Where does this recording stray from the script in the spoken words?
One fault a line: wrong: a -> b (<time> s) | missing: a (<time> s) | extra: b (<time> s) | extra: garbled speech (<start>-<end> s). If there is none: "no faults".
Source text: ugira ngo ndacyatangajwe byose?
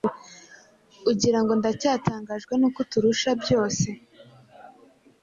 extra: n'uko uturusha (2.6 s)